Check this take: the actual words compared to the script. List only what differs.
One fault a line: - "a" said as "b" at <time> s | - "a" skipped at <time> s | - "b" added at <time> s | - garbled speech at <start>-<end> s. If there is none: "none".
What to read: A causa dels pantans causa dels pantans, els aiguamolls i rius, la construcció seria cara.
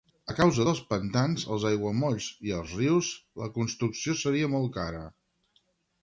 - "causa dels pantans" skipped at 1.4 s
- "els" added at 2.6 s
- "molt" added at 4.5 s